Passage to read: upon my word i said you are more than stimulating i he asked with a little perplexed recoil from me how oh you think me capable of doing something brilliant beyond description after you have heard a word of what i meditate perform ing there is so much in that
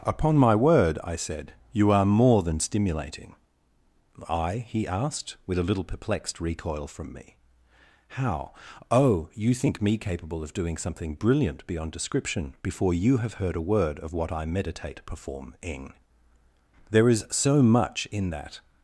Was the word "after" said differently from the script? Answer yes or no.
yes